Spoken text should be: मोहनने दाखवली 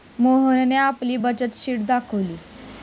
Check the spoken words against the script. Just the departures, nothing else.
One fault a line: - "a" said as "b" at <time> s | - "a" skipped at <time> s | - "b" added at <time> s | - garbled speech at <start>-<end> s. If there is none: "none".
- "आपली बचत शीट" added at 0.8 s